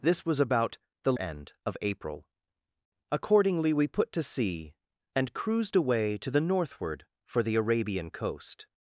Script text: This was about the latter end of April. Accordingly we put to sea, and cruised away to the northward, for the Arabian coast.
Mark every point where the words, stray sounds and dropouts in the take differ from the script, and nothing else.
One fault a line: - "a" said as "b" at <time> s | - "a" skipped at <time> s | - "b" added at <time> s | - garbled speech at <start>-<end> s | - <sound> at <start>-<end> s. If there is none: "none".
- "latter" skipped at 1.1 s